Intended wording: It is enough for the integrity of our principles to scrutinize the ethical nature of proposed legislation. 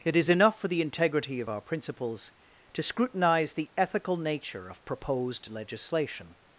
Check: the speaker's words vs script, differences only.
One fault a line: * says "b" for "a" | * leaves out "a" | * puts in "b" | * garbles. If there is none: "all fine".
all fine